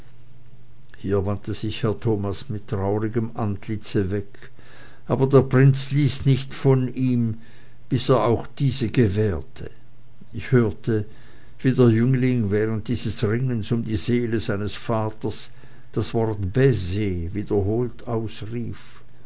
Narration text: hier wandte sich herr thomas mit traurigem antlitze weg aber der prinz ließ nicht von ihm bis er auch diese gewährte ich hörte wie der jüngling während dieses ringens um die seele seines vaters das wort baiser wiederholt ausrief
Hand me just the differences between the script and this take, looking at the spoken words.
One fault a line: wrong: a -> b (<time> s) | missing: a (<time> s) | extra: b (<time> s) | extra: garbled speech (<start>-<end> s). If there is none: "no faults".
no faults